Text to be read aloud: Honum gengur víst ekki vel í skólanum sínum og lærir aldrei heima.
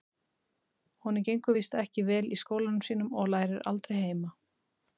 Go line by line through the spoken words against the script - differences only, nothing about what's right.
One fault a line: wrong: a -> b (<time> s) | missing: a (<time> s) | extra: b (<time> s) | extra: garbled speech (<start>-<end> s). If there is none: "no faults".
no faults